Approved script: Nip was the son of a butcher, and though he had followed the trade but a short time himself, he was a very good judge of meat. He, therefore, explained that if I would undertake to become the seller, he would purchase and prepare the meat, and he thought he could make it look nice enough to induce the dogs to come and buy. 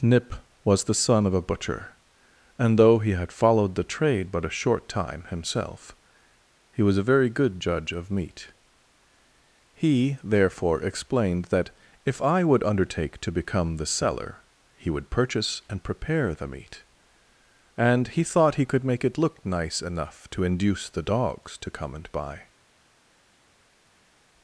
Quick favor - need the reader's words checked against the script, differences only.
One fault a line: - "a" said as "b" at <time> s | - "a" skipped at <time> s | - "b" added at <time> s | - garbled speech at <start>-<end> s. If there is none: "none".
none